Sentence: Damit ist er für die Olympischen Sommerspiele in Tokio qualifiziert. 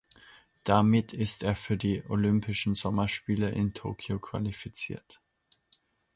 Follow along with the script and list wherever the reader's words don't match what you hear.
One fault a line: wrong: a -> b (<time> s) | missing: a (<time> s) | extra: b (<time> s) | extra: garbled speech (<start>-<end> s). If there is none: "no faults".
no faults